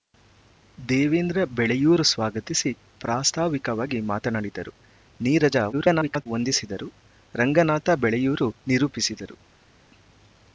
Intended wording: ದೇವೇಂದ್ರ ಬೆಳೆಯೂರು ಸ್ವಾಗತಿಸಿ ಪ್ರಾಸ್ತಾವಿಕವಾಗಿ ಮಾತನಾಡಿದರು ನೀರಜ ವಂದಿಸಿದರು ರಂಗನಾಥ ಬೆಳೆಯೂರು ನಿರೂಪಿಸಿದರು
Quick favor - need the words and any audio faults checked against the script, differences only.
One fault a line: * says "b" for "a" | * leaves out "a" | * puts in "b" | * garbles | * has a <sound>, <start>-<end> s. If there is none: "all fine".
* garbles